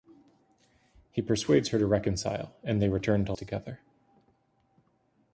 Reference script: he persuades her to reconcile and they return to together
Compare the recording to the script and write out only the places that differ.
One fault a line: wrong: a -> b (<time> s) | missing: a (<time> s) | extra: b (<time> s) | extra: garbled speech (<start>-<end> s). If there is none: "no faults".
no faults